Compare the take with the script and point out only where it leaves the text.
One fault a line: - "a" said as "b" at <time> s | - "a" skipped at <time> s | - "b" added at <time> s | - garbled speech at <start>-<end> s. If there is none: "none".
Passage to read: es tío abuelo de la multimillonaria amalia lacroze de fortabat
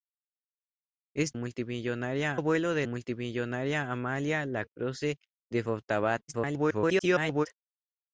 - "tío" said as "multimillonaria" at 1.4 s
- "la" skipped at 2.9 s
- garbled speech at 6.3-7.5 s